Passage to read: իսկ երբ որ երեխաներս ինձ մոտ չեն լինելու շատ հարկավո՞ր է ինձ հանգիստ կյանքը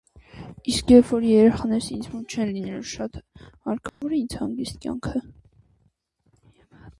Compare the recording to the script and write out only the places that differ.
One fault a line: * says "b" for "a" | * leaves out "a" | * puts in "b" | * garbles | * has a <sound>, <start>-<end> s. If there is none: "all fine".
* has a dropout, 3.9-4.0 s